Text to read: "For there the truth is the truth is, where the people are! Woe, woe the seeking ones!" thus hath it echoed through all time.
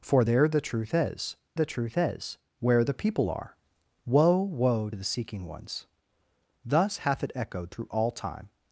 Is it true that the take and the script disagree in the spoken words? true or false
false